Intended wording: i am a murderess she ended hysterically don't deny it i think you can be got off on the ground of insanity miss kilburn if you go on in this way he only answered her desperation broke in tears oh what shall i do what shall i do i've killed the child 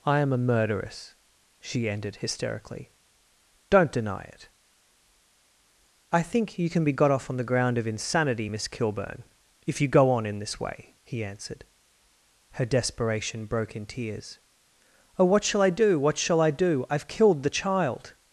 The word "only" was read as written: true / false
false